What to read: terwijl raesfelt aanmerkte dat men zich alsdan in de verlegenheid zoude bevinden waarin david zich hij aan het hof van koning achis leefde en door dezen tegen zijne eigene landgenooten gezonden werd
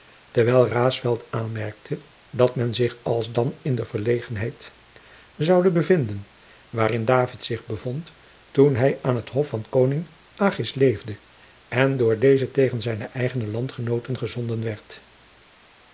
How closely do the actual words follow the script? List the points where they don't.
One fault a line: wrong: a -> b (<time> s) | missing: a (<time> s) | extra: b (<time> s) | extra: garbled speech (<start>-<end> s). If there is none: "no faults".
extra: bevond toen (7.7 s)